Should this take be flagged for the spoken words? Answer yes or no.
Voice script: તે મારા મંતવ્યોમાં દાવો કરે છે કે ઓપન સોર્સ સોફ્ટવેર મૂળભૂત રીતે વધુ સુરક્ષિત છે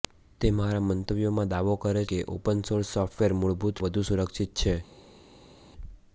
yes